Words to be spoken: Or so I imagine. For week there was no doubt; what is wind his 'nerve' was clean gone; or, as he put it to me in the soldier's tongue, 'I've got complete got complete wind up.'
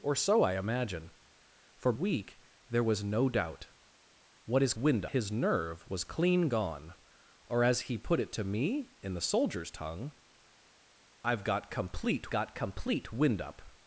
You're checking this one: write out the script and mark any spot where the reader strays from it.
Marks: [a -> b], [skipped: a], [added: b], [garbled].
Or so I imagine. For week there was no doubt; what is wind his 'nerve' was clean gone; or, as he put it to me in the soldier's tongue, 'I've got complete got complete wind up.'